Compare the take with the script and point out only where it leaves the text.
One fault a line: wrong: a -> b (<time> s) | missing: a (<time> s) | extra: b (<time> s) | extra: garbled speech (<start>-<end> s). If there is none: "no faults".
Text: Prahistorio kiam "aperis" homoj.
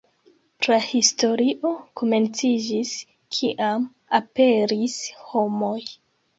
extra: komenciĝis (2.0 s)